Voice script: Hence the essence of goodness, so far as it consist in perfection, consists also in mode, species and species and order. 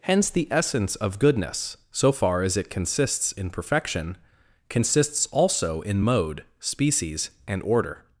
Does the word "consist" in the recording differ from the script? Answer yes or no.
yes